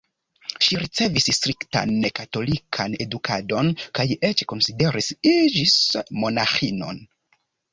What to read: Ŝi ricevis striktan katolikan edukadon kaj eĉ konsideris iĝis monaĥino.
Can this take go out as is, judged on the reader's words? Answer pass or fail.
pass